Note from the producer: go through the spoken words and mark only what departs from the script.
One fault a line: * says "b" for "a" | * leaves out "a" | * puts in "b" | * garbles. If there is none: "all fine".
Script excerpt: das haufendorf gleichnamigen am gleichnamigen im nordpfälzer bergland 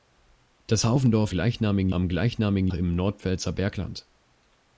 all fine